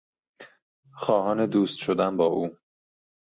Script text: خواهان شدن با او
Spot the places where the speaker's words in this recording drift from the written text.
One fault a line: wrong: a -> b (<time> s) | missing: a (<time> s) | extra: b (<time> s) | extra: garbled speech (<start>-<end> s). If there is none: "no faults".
extra: دوست (1.4 s)